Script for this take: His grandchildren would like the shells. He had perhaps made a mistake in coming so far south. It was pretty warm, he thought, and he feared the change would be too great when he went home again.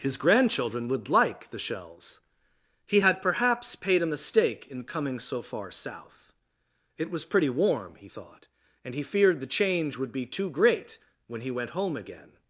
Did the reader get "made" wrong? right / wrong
wrong